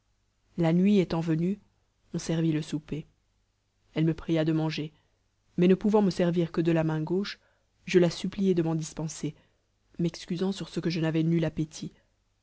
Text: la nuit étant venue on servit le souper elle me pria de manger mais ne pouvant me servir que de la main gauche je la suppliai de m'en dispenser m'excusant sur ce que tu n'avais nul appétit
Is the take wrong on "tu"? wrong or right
wrong